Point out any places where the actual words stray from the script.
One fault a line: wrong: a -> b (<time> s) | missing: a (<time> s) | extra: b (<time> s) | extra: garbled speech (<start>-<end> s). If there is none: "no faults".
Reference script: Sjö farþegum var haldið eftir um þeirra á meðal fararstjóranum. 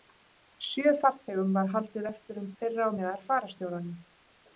no faults